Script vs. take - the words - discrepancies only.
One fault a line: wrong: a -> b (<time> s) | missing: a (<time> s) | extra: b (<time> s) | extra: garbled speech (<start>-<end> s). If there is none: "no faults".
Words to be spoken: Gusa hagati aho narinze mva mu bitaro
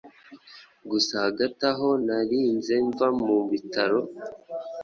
no faults